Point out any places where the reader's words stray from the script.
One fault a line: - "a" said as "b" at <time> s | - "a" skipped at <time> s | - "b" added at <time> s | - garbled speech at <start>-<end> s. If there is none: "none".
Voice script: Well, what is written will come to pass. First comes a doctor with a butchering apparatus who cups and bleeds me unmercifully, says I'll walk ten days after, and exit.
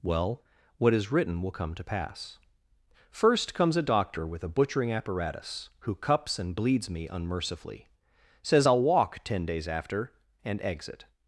none